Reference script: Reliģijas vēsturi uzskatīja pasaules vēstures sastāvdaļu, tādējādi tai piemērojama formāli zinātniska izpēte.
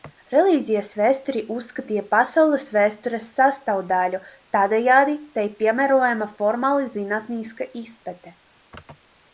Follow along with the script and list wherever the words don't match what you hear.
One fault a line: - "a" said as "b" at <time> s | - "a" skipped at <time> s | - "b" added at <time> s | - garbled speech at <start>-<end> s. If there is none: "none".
none